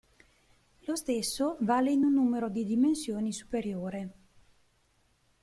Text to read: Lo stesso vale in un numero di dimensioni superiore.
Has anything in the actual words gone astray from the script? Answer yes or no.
no